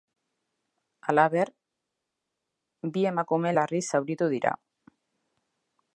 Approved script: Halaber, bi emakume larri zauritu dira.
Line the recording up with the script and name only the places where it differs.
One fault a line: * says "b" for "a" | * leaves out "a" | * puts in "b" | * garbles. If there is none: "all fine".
all fine